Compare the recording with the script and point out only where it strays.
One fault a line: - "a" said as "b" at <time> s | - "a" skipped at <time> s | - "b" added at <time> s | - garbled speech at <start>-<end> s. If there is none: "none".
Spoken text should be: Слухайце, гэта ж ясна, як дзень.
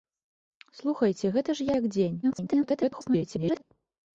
- "ясна" skipped at 1.7 s
- garbled speech at 2.2-3.6 s